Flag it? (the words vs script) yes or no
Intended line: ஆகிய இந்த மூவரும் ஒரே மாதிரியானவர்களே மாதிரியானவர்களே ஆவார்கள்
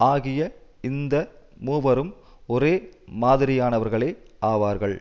yes